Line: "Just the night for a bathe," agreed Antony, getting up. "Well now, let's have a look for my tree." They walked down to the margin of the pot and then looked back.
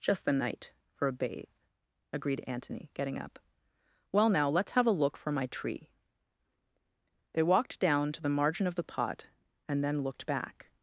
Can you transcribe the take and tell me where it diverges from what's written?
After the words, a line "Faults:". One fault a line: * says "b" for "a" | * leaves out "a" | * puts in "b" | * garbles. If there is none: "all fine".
"Just the night for a bathe," agreed Antony, getting up. "Well now, let's have a look for my tree." They walked down to the margin of the pot and then looked back.
Faults:
all fine